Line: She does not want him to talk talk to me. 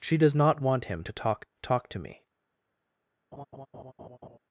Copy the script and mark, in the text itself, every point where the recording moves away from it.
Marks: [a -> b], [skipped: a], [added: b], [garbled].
She does not want him to talk talk to me.